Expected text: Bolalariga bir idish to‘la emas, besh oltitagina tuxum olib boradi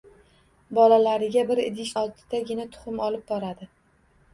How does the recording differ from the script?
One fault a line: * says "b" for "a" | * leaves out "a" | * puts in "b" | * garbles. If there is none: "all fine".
* leaves out "to‘la emas besh"